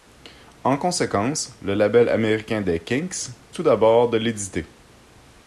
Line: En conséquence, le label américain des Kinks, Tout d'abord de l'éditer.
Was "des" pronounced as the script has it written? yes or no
yes